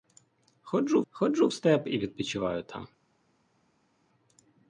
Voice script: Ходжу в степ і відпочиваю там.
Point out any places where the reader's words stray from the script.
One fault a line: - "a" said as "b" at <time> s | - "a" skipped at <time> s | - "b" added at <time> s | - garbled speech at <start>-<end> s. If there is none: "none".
- "ходжу" added at 1.1 s